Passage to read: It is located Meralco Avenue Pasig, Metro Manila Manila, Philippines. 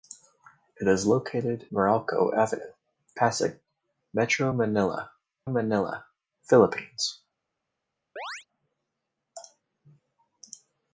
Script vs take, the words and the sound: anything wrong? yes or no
yes